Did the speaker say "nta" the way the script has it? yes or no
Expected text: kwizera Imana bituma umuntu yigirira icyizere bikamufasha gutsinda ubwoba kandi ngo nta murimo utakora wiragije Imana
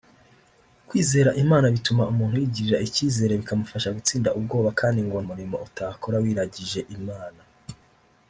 no